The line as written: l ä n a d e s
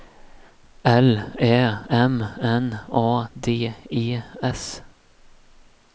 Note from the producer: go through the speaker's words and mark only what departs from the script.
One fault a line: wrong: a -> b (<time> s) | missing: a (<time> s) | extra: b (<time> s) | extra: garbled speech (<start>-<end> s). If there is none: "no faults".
extra: m (1.9 s)